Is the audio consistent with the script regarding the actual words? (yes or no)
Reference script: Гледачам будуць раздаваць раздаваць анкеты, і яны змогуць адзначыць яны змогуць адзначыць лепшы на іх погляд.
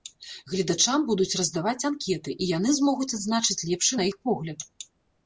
no